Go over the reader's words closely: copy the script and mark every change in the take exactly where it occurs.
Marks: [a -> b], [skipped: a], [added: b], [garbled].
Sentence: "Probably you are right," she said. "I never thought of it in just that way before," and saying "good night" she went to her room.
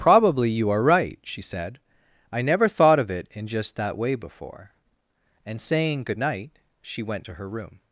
"Probably you are right," she said. "I never thought of it in just that way before," and saying "good night" she went to her room.